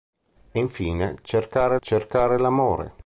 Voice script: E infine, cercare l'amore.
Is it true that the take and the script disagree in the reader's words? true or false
true